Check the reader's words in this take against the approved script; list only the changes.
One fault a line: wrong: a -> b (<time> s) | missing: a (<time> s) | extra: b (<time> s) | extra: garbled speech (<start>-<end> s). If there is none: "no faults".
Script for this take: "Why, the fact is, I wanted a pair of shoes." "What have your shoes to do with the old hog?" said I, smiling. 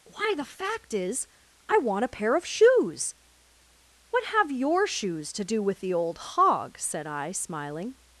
wrong: wanted -> want (1.8 s)